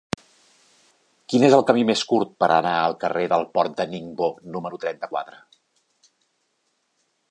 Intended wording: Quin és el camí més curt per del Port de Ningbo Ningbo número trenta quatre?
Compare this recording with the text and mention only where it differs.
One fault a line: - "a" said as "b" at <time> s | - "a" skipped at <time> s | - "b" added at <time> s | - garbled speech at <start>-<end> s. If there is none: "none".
- "anar al carrer" added at 2.6 s
- "Ningbo" skipped at 4.3 s